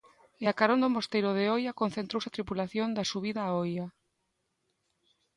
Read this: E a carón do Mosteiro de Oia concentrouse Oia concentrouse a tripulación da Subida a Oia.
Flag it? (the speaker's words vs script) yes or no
yes